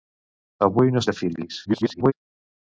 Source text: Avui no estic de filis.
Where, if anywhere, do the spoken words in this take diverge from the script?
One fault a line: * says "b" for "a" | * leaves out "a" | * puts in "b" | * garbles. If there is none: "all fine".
* leaves out "estic"
* garbles